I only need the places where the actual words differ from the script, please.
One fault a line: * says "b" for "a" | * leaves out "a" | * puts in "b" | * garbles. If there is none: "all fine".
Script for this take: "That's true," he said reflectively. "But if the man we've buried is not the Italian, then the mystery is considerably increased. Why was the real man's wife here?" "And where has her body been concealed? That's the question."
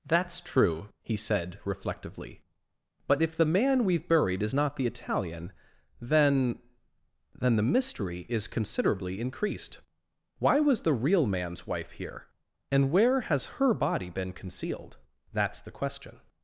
* puts in "then"